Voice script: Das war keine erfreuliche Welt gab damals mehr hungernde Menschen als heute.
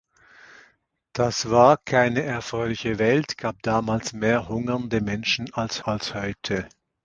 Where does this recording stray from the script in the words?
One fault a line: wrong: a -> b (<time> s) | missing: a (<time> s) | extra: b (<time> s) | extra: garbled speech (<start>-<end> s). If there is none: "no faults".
extra: als (5.8 s)